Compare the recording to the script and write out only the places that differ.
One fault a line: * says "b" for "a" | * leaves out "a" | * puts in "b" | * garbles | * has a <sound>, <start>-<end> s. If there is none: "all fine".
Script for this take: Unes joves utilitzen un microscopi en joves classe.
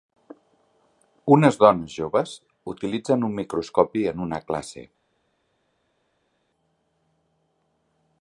* puts in "dones"
* says "una" for "joves"